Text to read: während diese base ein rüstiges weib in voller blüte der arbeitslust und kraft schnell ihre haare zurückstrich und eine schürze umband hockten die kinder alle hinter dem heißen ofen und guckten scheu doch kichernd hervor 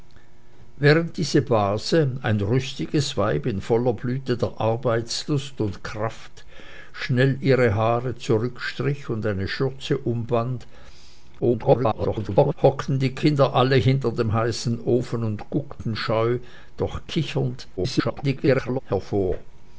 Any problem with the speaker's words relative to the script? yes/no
yes